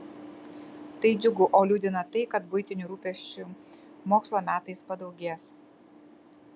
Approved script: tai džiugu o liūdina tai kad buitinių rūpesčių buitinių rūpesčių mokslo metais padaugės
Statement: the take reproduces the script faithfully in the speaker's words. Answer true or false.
false